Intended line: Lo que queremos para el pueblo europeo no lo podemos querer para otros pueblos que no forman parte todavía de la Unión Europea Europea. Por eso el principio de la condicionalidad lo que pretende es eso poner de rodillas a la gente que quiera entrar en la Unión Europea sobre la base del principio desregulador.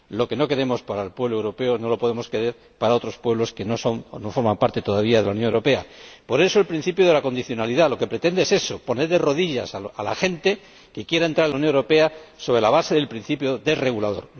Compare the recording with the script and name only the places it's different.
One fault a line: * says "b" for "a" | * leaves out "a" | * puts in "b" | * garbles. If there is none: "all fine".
* puts in "no"
* leaves out "Europea"